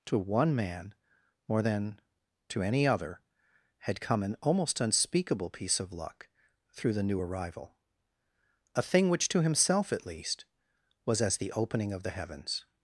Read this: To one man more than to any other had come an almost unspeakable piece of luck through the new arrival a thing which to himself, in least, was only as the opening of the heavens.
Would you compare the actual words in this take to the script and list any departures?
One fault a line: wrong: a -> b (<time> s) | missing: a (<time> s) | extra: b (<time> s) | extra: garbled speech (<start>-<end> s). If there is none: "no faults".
wrong: in -> at (9.9 s)
missing: only (11.2 s)